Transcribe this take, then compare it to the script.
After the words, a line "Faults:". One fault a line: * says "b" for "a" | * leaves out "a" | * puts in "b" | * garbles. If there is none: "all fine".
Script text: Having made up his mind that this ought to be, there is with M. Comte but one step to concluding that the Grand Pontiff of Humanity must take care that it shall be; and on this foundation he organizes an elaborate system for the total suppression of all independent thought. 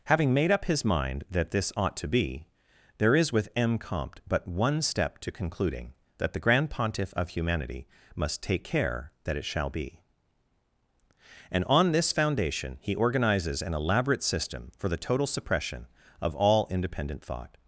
Having made up his mind that this ought to be, there is with M. Comte but one step to concluding that the Grand Pontiff of Humanity must take care that it shall be; and on this foundation he organizes an elaborate system for the total suppression of all independent thought.
Faults:
all fine